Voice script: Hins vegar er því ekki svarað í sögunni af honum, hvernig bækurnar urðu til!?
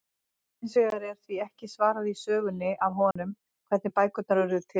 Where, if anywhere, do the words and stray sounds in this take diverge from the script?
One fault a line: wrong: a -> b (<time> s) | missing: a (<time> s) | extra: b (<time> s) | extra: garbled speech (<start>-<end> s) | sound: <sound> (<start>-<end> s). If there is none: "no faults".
sound: dropout (3.1-3.2 s)